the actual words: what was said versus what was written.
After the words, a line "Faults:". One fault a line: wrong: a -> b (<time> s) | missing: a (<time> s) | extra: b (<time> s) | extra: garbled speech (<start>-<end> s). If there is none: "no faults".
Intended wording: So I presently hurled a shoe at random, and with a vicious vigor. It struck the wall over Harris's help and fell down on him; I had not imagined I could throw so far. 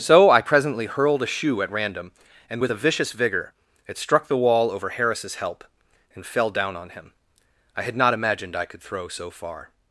So I presently hurled a shoe at random, and with a vicious vigor. It struck the wall over Harris's help and fell down on him; I had not imagined I could throw so far.
Faults:
no faults